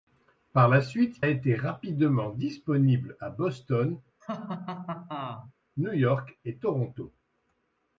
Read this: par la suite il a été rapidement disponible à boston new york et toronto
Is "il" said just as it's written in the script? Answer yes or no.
no